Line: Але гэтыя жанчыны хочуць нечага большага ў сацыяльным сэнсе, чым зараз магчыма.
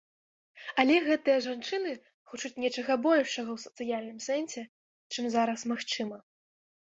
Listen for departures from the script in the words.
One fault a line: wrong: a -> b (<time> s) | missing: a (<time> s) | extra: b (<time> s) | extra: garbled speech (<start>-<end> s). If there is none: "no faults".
no faults